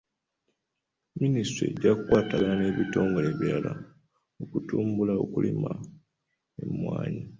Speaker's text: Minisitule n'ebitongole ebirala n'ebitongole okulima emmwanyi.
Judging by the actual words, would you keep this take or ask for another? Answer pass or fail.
fail